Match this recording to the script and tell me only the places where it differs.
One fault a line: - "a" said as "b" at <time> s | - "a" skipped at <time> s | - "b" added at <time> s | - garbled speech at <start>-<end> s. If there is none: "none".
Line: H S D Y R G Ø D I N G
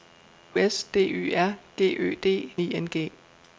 none